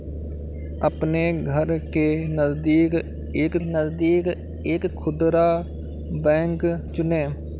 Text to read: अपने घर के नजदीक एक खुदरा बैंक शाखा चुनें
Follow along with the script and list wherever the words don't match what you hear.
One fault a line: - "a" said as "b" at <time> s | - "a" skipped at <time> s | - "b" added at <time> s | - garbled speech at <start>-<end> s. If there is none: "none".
- "नजदीक एक" added at 3.7 s
- "शाखा" skipped at 6.7 s